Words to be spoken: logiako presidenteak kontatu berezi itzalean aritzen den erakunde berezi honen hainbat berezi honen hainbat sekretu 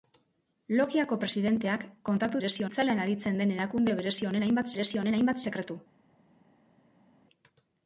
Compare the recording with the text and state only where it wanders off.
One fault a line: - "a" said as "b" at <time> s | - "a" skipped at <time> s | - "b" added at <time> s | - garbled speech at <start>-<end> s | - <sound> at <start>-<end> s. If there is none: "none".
none